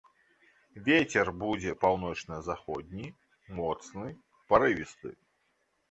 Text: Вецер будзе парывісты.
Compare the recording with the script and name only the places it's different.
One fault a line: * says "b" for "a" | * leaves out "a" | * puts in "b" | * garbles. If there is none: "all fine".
* puts in "паўночна заходні моцны"